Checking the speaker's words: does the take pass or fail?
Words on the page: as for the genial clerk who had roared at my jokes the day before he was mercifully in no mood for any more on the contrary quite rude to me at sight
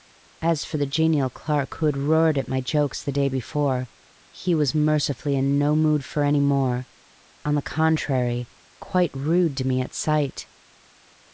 pass